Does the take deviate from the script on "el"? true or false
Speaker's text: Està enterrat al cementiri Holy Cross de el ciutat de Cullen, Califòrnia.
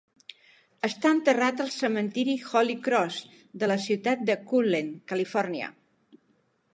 true